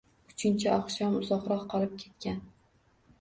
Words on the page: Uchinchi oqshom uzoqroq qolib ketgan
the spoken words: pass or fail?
pass